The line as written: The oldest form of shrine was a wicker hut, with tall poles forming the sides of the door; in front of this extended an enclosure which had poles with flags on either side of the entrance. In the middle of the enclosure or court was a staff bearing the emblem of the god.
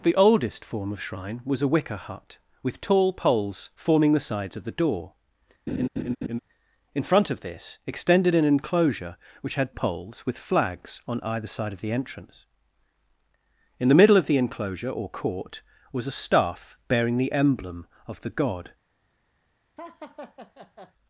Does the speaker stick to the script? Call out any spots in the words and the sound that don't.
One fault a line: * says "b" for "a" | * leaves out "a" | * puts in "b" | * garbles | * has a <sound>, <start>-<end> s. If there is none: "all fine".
* has a laugh, 5.7-6.4 s
* has a laugh, 19.8-20.9 s